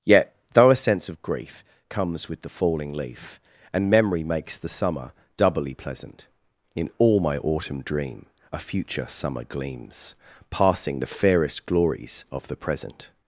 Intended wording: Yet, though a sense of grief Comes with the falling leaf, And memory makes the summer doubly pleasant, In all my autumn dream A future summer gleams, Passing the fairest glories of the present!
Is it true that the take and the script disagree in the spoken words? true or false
false